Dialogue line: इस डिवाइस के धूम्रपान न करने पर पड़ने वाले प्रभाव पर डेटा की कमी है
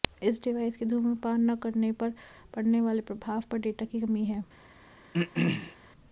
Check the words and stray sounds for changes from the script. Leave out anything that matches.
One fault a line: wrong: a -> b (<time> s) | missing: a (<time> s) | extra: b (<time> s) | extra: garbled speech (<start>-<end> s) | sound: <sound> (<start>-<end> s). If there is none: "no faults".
sound: throat clearing (5.1-5.8 s)